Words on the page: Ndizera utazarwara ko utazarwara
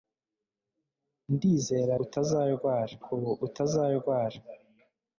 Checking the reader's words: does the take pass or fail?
pass